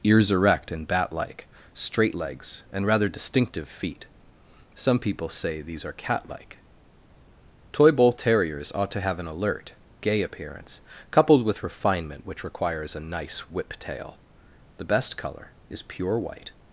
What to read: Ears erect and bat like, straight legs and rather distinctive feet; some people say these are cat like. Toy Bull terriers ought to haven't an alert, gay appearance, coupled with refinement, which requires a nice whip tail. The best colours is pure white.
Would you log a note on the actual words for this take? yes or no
yes